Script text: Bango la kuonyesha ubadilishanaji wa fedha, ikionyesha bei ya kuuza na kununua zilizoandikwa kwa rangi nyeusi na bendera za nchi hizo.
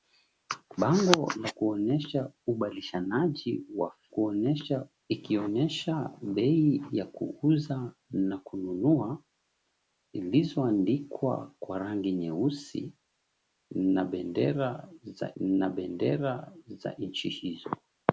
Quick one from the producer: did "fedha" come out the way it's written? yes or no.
no